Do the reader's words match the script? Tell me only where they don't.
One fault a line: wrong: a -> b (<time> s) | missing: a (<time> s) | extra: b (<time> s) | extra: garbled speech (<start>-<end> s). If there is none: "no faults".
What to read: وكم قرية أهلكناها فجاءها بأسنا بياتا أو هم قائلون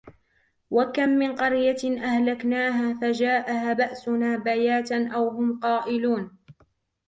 extra: من (1.1 s)